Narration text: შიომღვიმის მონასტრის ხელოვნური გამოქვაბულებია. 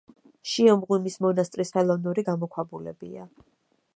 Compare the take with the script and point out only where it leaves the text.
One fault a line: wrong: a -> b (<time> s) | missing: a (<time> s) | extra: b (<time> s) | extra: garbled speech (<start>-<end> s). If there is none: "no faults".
no faults